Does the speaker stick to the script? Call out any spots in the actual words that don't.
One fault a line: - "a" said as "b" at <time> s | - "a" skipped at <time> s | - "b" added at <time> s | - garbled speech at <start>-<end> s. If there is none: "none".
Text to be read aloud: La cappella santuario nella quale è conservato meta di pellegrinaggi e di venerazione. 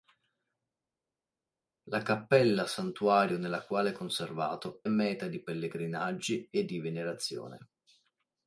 none